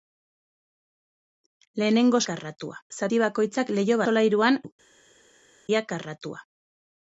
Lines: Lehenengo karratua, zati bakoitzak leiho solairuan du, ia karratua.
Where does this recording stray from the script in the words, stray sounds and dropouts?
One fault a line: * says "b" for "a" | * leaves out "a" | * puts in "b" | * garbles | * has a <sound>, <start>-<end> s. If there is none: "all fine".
all fine